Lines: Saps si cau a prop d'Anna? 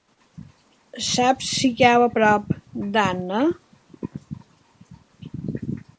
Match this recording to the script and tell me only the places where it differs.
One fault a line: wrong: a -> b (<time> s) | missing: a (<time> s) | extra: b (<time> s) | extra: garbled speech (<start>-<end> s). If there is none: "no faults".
no faults